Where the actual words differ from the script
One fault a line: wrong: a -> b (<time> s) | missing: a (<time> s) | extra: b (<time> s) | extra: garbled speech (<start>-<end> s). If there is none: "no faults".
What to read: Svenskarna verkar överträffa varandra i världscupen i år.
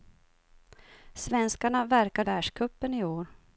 missing: överträffa varandra (2.2 s)